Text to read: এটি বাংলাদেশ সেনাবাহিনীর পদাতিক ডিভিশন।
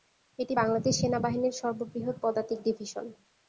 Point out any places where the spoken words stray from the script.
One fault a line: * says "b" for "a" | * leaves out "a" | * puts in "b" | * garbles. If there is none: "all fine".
* puts in "সর্ববৃহৎ"